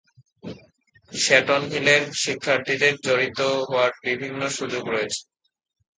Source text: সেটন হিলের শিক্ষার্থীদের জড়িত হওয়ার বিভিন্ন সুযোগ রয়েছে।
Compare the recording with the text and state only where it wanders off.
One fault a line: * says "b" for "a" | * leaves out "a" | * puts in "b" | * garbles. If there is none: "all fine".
all fine